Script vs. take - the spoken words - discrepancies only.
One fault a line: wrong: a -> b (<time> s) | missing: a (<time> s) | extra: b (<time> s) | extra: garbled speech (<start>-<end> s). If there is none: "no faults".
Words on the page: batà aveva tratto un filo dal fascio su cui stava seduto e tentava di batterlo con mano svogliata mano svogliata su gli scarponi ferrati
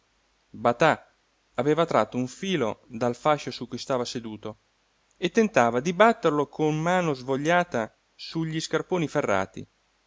missing: mano svogliata (8.0 s)